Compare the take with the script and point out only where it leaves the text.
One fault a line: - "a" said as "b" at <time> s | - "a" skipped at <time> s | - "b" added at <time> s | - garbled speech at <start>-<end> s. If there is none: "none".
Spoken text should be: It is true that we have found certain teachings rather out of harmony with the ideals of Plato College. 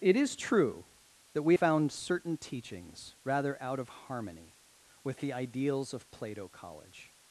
- "have" skipped at 1.5 s